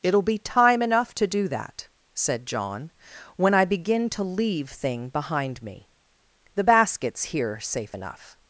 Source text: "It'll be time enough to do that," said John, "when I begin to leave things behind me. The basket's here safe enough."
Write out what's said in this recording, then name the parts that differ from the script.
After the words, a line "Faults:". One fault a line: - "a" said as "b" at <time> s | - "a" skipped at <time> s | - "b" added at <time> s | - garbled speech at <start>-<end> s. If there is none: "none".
"It'll be time enough to do that," said John, "when I begin to leave thing behind me. The basket's here safe enough."
Faults:
- "things" said as "thing" at 4.7 s